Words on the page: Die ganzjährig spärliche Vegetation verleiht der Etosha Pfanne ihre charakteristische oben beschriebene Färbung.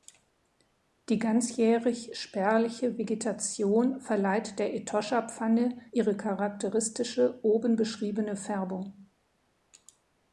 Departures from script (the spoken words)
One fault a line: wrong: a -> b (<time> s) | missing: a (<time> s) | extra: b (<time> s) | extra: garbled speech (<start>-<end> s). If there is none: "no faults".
no faults